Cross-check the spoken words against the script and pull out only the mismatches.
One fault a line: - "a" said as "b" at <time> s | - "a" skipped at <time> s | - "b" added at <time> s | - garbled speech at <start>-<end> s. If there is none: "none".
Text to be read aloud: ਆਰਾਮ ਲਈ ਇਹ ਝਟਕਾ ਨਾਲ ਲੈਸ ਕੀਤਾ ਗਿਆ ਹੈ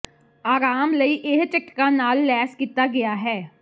none